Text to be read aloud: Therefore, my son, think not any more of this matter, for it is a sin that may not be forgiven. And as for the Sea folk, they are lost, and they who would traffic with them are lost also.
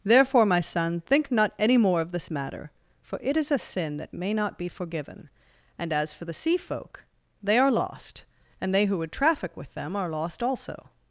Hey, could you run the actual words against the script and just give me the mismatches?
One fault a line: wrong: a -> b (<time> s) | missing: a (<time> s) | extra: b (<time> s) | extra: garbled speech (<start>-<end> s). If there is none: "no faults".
no faults